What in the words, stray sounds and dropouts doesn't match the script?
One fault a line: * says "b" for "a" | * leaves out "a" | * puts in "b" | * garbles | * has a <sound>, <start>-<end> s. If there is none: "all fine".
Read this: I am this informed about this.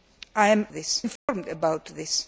* has a dropout, 1.2-1.3 s